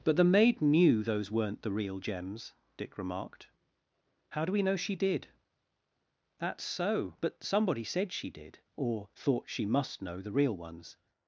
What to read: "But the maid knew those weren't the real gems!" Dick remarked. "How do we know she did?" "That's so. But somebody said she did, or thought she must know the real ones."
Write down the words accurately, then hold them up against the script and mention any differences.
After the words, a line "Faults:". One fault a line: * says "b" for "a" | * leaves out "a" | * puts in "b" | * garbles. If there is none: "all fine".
"But the maid knew those weren't the real gems!" Dick remarked. "How do we know she did?" "That's so. But somebody said she did, or thought she must know the real ones."
Faults:
all fine